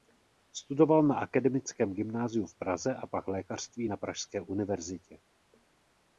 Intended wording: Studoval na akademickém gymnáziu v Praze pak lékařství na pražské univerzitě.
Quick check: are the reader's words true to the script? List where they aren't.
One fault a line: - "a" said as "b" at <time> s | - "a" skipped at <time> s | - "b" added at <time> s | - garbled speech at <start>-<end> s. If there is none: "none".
- "a" added at 3.0 s